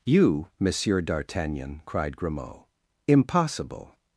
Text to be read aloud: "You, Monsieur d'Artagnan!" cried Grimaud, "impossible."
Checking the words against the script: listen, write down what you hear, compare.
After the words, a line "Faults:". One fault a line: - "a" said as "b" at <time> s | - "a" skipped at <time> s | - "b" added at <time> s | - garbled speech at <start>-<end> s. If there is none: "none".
"You, Monsieur d'Artagnan!" cried Grimaud, "impossible."
Faults:
none